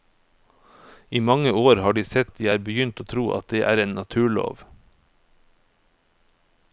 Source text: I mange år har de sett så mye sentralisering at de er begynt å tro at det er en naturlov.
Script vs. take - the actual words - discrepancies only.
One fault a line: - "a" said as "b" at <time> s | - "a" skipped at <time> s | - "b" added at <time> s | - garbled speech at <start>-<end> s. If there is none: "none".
- "så mye sentralisering" skipped at 2.3 s